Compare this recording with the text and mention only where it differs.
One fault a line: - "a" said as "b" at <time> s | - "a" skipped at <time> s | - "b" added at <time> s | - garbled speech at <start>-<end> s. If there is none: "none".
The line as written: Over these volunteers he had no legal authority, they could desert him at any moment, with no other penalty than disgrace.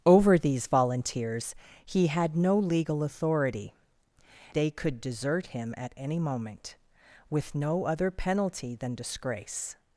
none